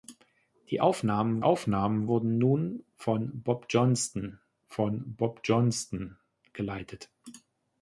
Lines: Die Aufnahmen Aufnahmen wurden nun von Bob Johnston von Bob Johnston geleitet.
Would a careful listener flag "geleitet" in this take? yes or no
no